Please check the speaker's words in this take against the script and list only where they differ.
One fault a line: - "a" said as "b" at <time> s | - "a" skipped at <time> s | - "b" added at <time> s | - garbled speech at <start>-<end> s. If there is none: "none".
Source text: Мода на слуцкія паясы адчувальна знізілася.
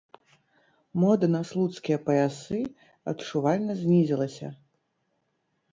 none